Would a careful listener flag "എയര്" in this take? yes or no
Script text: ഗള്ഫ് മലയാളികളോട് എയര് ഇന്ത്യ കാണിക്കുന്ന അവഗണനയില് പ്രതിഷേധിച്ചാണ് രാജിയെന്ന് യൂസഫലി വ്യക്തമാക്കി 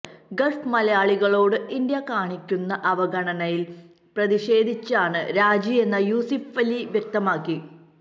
yes